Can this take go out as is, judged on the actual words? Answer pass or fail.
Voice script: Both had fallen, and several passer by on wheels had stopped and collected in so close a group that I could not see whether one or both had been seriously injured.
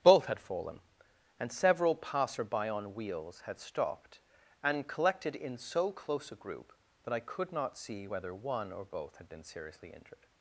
pass